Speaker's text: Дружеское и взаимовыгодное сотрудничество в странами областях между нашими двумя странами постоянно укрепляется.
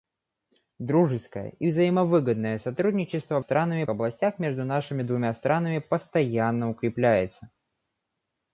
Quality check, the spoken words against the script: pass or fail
pass